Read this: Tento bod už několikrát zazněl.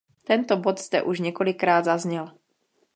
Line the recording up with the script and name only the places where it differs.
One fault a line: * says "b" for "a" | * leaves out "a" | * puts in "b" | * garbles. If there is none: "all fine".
* puts in "zde"